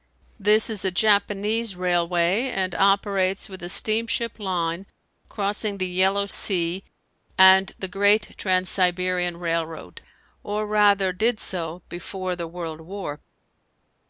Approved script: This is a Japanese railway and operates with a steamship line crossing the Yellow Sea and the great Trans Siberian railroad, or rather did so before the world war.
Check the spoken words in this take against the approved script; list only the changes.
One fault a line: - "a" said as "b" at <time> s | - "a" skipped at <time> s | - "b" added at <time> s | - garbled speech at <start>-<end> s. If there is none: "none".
none